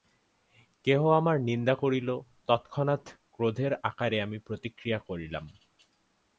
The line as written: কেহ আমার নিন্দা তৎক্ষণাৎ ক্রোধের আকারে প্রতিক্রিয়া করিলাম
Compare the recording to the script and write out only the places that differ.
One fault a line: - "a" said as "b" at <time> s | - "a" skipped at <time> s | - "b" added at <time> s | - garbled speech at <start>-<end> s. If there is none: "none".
- "করিল" added at 1.8 s
- "আমি" added at 4.2 s